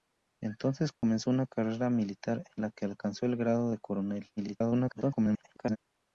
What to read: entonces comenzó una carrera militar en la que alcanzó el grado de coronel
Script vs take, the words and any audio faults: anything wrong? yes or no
yes